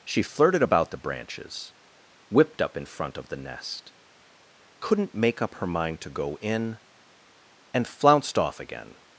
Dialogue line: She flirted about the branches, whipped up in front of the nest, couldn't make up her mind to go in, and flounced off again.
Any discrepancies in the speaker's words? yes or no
no